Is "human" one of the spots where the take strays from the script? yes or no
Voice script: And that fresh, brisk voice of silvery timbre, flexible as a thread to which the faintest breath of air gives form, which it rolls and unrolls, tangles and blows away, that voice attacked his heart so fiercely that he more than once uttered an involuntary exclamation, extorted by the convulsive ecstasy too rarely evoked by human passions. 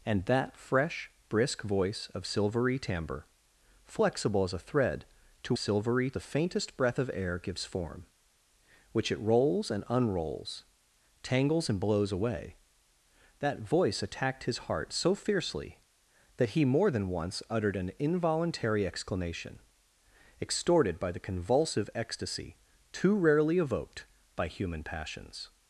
no